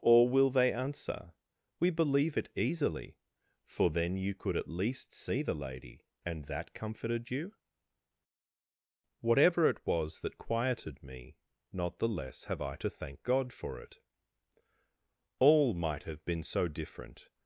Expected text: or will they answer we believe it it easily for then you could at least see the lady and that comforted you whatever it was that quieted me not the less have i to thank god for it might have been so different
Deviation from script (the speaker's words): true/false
true